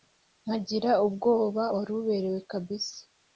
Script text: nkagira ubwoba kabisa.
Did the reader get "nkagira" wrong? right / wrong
right